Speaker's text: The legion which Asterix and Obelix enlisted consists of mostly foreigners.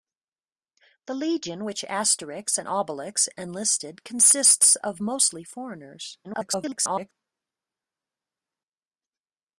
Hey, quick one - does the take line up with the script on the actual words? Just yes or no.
no